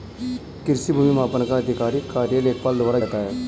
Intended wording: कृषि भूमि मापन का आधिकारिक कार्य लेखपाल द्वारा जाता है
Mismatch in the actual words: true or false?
false